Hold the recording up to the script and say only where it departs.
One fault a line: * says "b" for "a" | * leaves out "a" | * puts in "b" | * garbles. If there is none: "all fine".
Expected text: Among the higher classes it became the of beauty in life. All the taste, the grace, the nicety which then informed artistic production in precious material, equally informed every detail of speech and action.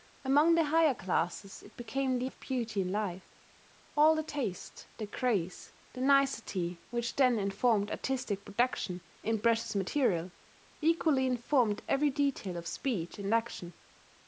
all fine